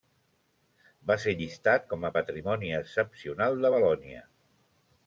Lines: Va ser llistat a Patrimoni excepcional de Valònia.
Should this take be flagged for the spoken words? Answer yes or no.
yes